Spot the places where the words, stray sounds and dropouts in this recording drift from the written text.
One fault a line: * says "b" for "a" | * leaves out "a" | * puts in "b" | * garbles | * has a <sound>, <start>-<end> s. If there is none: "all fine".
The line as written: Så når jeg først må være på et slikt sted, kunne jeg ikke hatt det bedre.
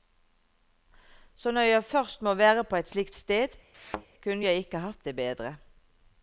* has a thud, 3.7-4.1 s